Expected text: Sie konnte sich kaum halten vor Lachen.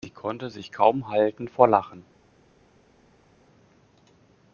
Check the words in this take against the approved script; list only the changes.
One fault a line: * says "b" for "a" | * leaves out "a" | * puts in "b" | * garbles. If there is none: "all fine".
all fine